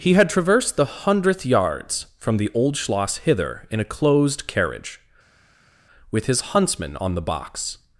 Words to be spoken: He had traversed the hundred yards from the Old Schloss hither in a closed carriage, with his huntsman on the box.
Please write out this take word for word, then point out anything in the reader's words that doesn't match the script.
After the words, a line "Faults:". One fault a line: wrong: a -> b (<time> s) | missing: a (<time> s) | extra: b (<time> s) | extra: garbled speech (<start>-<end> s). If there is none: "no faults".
He had traversed the hundredth yards from the Old Schloss hither in a closed carriage, with his huntsman on the box.
Faults:
wrong: hundred -> hundredth (1.1 s)